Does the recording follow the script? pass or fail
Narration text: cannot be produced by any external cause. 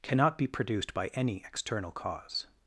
pass